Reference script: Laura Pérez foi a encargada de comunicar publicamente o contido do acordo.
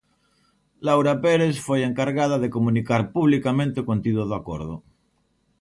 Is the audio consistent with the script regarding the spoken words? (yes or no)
yes